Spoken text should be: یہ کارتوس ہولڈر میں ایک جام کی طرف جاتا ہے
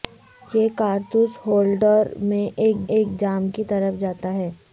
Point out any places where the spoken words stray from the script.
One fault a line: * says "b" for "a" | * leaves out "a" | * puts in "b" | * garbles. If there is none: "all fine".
* puts in "ایک"